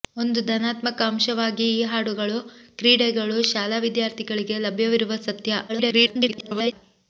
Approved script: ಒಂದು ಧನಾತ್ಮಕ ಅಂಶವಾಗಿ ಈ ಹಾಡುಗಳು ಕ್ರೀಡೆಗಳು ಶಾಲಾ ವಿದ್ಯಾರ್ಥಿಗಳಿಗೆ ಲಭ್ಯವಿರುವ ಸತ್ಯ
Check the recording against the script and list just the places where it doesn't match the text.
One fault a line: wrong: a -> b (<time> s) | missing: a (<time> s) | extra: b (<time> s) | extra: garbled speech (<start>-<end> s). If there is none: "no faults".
extra: garbled speech (5.7-6.7 s)